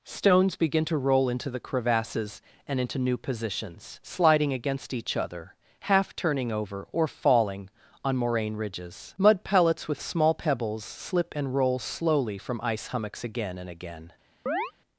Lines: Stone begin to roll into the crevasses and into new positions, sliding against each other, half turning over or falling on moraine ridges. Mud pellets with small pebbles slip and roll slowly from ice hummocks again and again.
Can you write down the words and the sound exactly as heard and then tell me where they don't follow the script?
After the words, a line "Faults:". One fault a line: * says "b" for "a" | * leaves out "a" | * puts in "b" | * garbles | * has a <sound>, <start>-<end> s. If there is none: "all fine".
Stones begin to roll into the crevasses and into new positions, sliding against each other, half turning over or falling on moraine ridges. Mud pellets with small pebbles slip and roll slowly from ice hummocks again and again.
Faults:
* says "Stones" for "Stone"
* has a chirp, 14.5-14.7 s